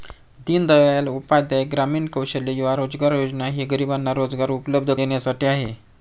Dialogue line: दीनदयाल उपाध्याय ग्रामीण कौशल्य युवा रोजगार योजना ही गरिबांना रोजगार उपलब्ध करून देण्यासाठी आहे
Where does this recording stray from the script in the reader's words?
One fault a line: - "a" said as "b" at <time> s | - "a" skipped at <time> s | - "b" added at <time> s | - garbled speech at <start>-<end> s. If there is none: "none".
- "करून" skipped at 4.9 s